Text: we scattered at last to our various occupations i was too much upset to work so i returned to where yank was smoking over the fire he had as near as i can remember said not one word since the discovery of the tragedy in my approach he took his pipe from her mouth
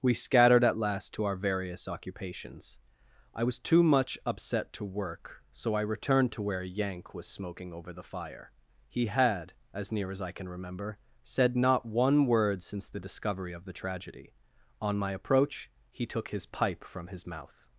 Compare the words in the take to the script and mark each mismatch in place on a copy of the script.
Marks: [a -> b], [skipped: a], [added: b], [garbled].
we scattered at last to our various occupations i was too much upset to work so i returned to where yank was smoking over the fire he had as near as i can remember said not one word since the discovery of the tragedy [in -> on] my approach he took his pipe from [her -> his] mouth